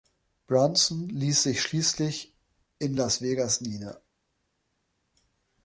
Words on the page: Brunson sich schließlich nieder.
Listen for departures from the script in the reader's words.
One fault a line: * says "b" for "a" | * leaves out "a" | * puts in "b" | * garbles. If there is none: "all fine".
* puts in "ließ"
* puts in "in Las Vegas"